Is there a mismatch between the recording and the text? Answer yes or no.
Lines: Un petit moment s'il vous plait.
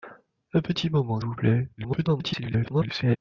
yes